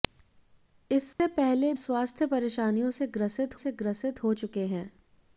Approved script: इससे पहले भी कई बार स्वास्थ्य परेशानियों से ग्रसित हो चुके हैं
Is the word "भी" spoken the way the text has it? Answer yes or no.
no